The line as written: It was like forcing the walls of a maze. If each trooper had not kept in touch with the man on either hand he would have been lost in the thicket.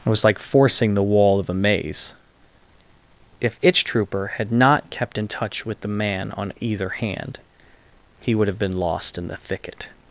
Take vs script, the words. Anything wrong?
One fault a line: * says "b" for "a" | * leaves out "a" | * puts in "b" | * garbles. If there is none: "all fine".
* says "wall" for "walls"
* says "itch" for "each"